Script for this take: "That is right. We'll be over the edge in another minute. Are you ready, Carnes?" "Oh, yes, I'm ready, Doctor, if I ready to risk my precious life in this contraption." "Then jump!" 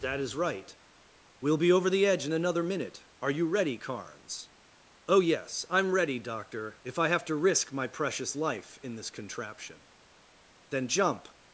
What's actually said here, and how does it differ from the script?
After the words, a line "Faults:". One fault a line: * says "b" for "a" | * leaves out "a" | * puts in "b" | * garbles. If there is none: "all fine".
"That is right. We'll be over the edge in another minute. Are you ready, Carnes?" "Oh, yes, I'm ready, Doctor, if I have to risk my precious life in this contraption." "Then jump!"
Faults:
* says "have" for "ready"